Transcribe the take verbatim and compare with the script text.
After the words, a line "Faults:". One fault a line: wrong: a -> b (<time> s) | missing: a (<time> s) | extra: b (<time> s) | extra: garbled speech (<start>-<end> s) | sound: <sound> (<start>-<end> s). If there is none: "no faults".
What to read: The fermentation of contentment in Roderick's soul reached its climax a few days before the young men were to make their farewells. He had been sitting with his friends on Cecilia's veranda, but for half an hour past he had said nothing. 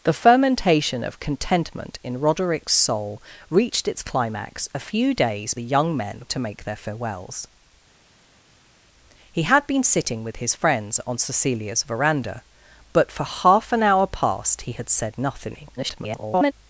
The fermentation of contentment in Roderick's soul reached its climax a few days the young men to make their farewells. He had been sitting with his friends on Cecilia's veranda, but for half an hour past he had said nothing. [garbled]
Faults:
missing: before (5.5 s)
missing: were (6.2 s)
extra: garbled speech (15.8-16.5 s)